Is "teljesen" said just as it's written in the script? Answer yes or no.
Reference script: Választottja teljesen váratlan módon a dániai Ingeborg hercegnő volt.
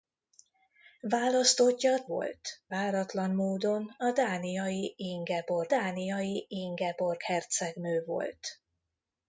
no